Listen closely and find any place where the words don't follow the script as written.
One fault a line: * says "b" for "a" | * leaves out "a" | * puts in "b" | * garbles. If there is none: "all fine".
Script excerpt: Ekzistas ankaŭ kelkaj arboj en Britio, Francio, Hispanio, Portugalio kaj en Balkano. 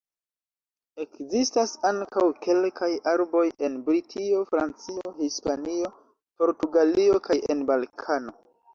all fine